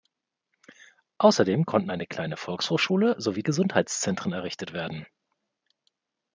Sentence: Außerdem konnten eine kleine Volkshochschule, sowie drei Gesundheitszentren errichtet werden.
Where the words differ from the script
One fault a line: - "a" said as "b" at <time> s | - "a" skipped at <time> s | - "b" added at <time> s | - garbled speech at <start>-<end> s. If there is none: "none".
- "drei" skipped at 3.4 s